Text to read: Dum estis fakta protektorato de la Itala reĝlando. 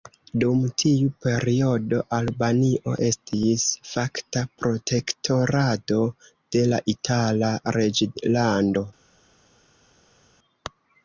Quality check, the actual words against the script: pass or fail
fail